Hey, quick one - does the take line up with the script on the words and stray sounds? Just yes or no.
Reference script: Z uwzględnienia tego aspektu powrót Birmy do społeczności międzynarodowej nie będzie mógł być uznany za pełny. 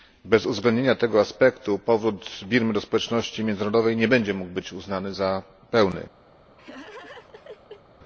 no